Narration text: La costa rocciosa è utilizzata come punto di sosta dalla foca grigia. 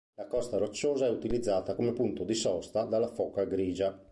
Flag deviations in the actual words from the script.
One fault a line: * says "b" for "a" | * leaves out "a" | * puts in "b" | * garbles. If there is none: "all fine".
all fine